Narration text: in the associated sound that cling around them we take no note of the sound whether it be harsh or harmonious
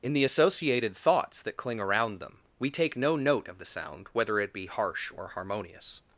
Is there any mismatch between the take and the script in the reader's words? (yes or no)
yes